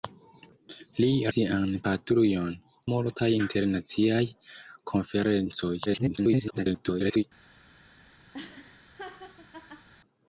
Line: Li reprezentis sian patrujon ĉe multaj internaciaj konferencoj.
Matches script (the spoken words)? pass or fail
fail